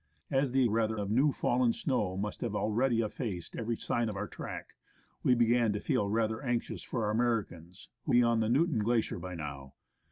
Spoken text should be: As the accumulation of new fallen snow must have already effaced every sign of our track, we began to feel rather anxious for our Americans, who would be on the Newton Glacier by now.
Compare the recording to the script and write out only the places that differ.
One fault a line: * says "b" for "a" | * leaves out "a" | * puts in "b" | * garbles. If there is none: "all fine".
* says "rather" for "accumulation"
* leaves out "would"